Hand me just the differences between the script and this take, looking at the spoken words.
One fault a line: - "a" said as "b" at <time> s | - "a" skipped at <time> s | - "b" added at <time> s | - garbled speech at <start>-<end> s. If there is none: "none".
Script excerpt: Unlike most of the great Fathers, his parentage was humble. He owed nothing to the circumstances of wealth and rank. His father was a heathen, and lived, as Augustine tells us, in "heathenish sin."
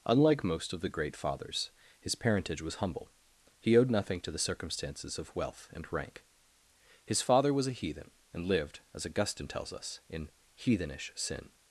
none